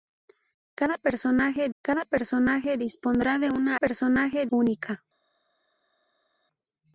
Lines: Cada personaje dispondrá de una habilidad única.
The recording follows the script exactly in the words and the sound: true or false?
false